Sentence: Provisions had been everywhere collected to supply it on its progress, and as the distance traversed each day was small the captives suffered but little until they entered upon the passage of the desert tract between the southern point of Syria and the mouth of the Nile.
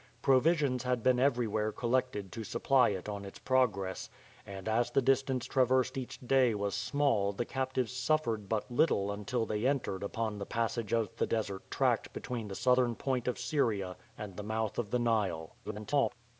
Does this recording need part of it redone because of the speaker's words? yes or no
yes